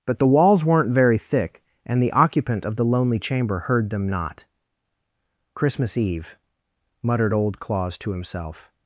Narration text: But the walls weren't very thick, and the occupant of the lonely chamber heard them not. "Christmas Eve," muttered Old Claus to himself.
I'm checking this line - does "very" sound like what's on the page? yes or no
yes